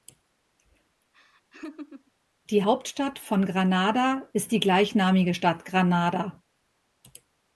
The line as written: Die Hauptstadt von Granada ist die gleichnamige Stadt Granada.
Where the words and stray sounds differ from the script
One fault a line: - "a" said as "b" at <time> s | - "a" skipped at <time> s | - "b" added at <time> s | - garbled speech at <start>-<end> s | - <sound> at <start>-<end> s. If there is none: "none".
- laugh at 1.1-2.1 s